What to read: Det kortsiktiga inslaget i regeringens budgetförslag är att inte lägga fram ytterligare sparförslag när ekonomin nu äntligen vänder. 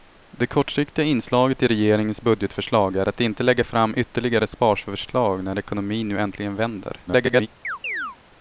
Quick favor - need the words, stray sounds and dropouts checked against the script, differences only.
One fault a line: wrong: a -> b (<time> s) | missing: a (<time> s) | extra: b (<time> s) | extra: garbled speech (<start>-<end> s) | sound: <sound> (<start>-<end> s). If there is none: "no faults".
extra: garbled speech (7.1-7.5 s)
sound: chirp (7.6-8.2 s)